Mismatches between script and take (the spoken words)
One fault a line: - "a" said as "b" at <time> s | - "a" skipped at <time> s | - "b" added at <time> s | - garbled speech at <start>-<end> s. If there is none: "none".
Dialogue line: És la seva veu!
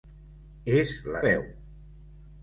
- "seva" skipped at 1.2 s